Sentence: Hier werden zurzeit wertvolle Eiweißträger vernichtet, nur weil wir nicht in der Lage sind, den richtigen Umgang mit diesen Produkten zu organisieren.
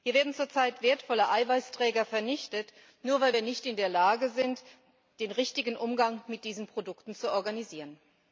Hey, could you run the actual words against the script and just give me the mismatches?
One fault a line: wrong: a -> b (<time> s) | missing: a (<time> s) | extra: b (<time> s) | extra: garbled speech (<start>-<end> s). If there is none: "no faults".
no faults